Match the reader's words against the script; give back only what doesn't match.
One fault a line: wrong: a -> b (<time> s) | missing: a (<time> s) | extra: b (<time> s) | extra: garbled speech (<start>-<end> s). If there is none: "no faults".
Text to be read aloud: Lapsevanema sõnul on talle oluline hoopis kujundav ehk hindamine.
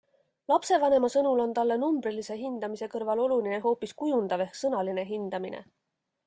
extra: numbrilise hindamise kõrval (1.8 s)
extra: sõnaline (4.6 s)